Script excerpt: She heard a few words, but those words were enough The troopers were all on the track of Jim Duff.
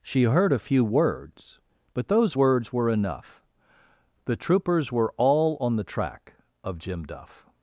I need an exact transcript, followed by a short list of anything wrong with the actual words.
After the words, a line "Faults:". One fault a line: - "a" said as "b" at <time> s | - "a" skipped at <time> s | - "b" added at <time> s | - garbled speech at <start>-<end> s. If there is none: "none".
She heard a few words, but those words were enough The troopers were all on the track of Jim Duff.
Faults:
none